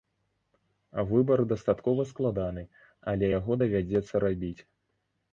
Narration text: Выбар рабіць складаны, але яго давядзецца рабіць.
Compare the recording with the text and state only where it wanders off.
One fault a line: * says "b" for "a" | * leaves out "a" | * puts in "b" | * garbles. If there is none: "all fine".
* says "дастаткова" for "рабіць"